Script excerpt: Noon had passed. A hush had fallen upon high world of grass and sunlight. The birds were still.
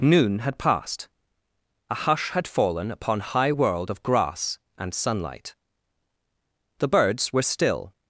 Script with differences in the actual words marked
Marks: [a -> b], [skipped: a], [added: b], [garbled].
Noon had passed. A hush had fallen upon high world of grass and sunlight. The birds were still.